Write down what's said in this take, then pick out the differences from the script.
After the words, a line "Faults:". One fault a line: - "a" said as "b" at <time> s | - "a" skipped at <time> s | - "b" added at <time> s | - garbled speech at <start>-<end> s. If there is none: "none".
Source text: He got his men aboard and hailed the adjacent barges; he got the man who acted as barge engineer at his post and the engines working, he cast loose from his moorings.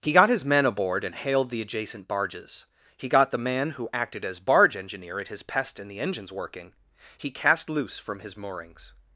He got his men aboard and hailed the adjacent barges; he got the man who acted as barge engineer at his pest and the engines working, he cast loose from his moorings.
Faults:
- "post" said as "pest" at 5.4 s